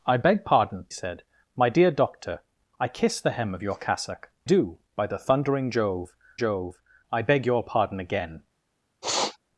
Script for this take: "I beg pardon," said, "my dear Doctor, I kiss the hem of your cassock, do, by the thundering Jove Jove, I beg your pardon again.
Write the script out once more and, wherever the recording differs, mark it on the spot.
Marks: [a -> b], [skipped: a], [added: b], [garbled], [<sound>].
"I beg pardon," said, "my dear Doctor, I kiss the hem of your cassock, do, by the thundering Jove Jove, I beg your pardon again. [sniff]